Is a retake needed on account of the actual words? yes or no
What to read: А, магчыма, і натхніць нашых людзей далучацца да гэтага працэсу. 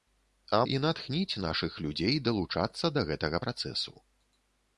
yes